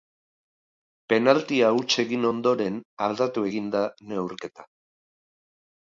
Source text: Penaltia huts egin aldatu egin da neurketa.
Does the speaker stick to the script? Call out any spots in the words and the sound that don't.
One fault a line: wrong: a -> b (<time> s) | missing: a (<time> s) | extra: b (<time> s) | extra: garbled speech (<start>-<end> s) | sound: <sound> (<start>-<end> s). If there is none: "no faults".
extra: ondoren (2.3 s)